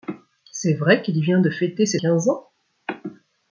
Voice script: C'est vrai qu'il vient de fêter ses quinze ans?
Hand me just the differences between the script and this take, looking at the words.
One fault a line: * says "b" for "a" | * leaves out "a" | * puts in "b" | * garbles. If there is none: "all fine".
all fine